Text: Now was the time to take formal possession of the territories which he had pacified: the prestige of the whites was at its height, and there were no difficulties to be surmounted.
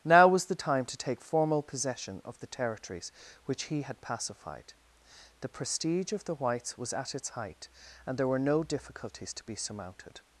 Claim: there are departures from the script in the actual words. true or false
false